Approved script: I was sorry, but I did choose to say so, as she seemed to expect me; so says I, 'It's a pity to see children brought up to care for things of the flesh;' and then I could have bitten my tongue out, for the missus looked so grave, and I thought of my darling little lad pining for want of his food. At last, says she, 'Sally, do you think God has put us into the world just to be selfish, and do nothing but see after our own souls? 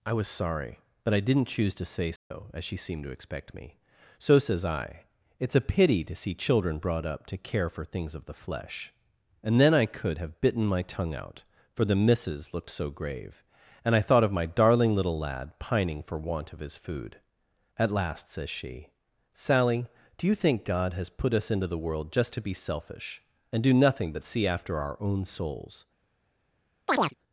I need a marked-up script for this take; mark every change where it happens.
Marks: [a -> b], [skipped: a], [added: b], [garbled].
I was sorry, but I [did -> didn't] choose to say so, as she seemed to expect me; so says I, 'It's a pity to see children brought up to care for things of the flesh;' and then I could have bitten my tongue out, for the missus looked so grave, and I thought of my darling little lad pining for want of his food. At last, says she, 'Sally, do you think God has put us into the world just to be selfish, and do nothing but see after our own souls?